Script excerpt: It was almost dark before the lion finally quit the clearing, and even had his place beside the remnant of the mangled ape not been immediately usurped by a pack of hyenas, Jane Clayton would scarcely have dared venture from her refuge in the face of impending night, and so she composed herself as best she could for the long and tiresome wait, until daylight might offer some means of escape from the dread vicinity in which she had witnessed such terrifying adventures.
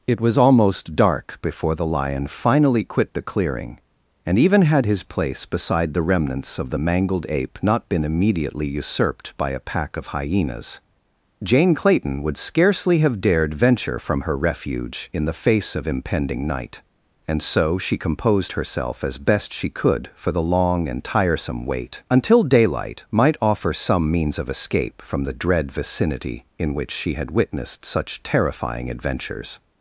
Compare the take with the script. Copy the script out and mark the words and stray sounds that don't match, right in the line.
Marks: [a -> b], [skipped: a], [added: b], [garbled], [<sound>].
It was almost dark before the lion finally quit the clearing, and even had his place beside the [remnant -> remnants] of the mangled ape not been immediately usurped by a pack of hyenas, Jane Clayton would scarcely have dared venture from her refuge in the face of impending night, and so she composed herself as best she could for the long and tiresome wait, until daylight might offer some means of escape from the dread vicinity in which she had witnessed such terrifying adventures.